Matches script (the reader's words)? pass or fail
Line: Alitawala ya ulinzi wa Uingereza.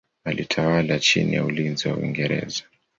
fail